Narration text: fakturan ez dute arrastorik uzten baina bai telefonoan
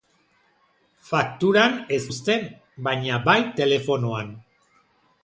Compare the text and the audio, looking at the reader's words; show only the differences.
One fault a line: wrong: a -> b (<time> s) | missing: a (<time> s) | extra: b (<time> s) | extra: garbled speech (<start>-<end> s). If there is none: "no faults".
missing: dute arrastorik (2.0 s)